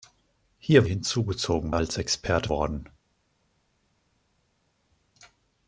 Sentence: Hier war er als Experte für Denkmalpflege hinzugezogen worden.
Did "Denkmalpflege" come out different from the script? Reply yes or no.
yes